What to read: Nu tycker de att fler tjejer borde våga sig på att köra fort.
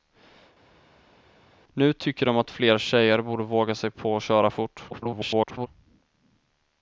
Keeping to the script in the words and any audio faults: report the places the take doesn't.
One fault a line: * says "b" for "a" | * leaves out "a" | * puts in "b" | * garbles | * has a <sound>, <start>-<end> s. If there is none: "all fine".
* garbles